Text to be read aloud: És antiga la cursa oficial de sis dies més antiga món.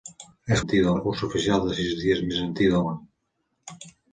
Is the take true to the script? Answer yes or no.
yes